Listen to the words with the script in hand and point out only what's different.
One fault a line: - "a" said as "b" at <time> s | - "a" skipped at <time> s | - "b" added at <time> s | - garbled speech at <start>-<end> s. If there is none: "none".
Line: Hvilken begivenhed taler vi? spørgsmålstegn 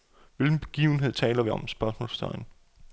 - "om" added at 1.5 s